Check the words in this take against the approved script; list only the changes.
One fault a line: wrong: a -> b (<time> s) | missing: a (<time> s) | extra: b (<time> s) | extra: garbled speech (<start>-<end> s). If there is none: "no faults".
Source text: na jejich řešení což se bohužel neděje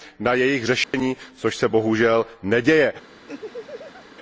no faults